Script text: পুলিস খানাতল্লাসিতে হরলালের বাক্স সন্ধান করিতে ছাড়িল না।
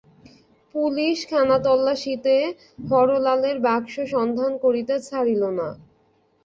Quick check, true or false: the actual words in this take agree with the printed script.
true